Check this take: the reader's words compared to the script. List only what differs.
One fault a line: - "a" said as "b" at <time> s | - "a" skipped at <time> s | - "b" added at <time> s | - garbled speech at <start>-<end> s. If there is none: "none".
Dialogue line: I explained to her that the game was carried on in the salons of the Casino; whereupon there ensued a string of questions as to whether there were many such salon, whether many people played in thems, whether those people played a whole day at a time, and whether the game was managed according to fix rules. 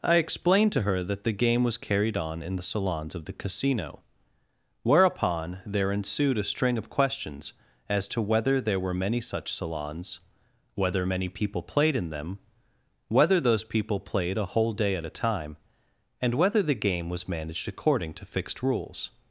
- "salon" said as "salons" at 9.5 s
- "thems" said as "them" at 12.1 s
- "fix" said as "fixed" at 18.2 s